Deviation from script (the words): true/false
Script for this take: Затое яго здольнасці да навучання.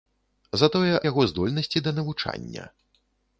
false